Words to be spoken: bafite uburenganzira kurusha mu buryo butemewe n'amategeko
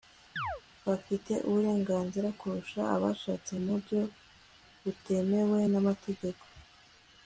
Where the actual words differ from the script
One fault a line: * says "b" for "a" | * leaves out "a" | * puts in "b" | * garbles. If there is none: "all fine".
* puts in "abashatse"